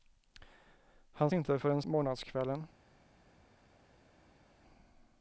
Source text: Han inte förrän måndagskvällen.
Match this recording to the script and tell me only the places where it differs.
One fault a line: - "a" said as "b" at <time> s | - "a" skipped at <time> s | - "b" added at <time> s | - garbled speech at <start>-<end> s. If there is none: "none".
none